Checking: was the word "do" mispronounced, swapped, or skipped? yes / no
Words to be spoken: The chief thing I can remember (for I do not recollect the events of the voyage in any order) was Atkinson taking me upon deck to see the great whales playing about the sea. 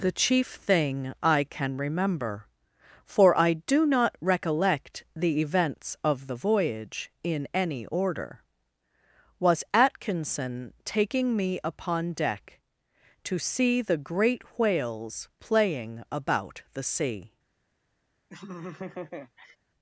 no